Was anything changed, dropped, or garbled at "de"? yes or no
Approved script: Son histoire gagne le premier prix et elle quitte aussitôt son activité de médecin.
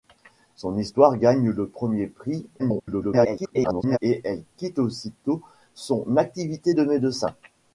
no